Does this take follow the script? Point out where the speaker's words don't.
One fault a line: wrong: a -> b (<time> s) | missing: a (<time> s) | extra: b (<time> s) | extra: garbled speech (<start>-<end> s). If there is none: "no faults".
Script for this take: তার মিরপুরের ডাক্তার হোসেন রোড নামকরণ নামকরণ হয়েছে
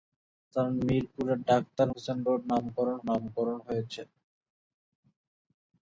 no faults